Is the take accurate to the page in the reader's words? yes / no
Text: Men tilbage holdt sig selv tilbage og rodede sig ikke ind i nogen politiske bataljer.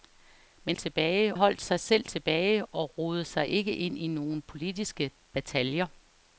yes